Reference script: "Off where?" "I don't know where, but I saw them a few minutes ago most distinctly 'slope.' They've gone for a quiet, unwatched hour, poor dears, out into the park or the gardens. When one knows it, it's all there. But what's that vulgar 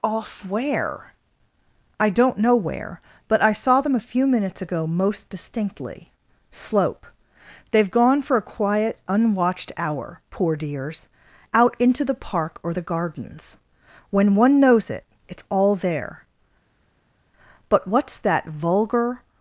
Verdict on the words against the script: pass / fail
pass